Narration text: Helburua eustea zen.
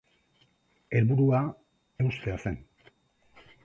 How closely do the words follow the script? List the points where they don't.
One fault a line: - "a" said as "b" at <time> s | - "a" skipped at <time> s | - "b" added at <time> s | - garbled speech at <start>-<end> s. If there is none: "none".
none